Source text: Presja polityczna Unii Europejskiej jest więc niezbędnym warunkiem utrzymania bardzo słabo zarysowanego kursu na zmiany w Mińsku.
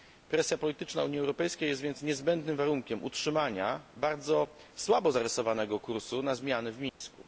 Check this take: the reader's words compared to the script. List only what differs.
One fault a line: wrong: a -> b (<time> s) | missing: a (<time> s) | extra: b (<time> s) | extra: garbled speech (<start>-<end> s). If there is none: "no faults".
no faults